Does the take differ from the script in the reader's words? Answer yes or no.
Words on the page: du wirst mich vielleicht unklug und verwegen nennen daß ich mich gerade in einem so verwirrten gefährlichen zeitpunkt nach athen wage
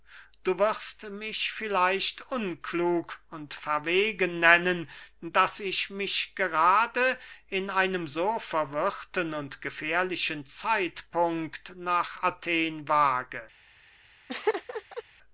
yes